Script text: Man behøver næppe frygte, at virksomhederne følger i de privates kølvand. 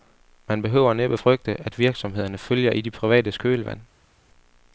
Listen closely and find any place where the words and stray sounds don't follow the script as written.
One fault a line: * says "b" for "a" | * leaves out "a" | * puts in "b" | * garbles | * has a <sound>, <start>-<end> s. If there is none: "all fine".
all fine